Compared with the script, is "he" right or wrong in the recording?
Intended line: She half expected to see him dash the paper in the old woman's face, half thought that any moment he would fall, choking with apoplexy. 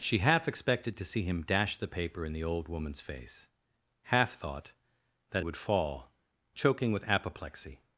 wrong